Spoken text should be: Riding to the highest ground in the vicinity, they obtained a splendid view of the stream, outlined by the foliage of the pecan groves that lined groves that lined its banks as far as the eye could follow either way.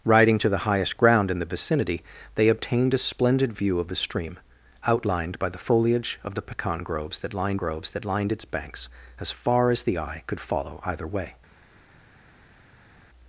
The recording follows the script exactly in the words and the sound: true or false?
true